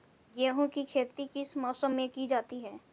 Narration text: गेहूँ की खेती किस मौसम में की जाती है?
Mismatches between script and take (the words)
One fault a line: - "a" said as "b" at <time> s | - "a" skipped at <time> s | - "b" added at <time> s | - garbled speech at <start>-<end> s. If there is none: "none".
none